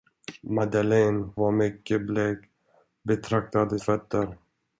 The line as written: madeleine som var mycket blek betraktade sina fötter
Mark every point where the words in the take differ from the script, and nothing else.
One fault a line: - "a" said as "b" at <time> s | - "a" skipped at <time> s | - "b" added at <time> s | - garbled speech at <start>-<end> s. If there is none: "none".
- "som" skipped at 1.3 s
- "sina" skipped at 3.8 s